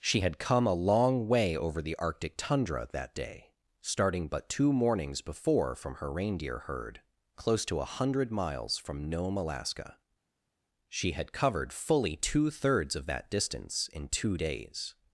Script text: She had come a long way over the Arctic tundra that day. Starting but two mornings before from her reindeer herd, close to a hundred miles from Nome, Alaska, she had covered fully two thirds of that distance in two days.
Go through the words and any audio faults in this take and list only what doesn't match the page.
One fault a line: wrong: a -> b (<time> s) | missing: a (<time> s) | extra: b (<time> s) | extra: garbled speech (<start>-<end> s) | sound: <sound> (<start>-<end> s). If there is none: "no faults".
no faults